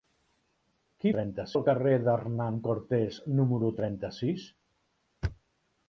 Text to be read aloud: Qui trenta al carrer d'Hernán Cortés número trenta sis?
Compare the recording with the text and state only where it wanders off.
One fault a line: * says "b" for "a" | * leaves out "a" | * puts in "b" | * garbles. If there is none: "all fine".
all fine